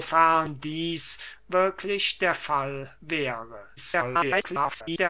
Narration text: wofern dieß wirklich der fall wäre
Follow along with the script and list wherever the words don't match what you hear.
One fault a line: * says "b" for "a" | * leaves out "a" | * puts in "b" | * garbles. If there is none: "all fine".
* garbles